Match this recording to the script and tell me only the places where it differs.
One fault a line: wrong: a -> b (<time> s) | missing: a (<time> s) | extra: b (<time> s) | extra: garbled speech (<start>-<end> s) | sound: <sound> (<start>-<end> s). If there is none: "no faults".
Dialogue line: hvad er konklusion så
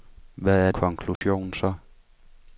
sound: dropout (1.2-1.2 s)